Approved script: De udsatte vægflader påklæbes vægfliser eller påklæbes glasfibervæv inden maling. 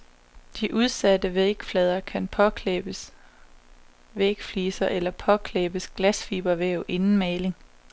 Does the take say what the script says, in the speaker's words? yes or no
no